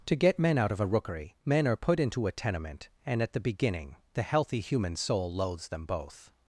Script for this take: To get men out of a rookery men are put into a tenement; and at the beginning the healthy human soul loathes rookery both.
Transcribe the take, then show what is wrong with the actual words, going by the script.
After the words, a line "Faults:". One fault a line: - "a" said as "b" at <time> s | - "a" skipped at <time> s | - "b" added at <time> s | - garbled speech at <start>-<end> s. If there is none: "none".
To get men out of a rookery men are put into a tenement; and at the beginning the healthy human soul loathes them both.
Faults:
- "rookery" said as "them" at 5.7 s